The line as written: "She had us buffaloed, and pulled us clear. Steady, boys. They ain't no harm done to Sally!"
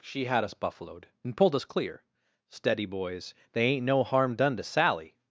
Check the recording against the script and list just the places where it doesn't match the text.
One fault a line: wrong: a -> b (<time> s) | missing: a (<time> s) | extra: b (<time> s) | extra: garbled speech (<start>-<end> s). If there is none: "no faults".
no faults